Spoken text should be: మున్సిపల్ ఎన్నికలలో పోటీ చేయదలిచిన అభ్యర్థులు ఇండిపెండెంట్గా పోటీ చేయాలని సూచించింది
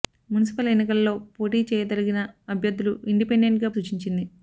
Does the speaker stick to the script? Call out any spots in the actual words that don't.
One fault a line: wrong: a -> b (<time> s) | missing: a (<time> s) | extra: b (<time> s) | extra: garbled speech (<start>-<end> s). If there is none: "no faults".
missing: పోటీ చేయాలని (3.7 s)